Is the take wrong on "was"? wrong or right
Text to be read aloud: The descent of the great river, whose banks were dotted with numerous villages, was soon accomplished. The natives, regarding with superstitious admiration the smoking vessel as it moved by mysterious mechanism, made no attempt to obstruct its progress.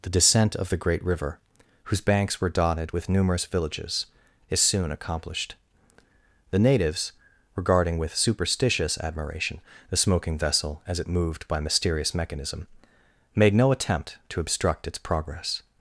wrong